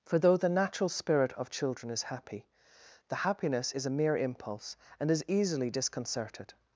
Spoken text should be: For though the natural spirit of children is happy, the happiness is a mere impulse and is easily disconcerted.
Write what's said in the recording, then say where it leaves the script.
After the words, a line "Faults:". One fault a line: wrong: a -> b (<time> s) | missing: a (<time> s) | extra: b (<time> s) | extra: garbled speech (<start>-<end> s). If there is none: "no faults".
For though the natural spirit of children is happy, the happiness is a mere impulse and is easily disconcerted.
Faults:
no faults